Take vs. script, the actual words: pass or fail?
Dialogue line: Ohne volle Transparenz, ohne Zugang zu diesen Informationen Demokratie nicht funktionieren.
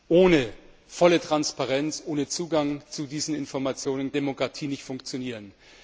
pass